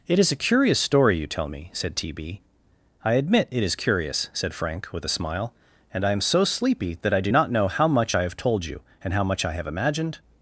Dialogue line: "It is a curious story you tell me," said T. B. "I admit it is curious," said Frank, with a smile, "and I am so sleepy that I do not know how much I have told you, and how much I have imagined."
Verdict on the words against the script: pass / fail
pass